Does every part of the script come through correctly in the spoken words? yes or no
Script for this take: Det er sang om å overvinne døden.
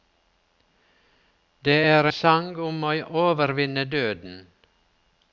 yes